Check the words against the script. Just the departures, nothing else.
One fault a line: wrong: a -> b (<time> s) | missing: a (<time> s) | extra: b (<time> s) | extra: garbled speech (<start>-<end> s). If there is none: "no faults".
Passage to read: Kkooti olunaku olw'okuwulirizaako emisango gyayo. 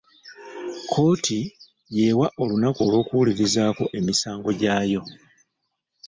extra: y'ewa (1.9 s)